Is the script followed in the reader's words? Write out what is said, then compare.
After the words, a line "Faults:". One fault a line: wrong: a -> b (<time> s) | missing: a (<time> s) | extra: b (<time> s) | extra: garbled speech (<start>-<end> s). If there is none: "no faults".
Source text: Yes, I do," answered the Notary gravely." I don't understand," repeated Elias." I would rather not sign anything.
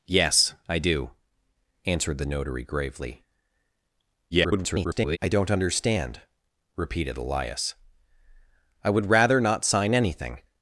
Yes, I do," answered the Notary gravely." [garbled] I don't understand," repeated Elias." I would rather not sign anything.
Faults:
extra: garbled speech (4.3-5.2 s)